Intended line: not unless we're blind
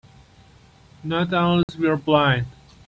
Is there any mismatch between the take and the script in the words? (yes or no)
no